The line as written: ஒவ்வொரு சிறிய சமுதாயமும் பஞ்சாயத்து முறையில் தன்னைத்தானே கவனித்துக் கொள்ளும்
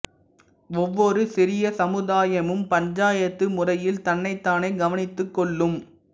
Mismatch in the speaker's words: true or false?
false